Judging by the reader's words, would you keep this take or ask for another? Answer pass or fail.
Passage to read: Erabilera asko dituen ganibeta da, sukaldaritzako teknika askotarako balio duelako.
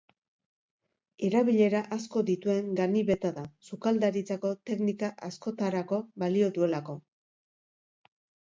pass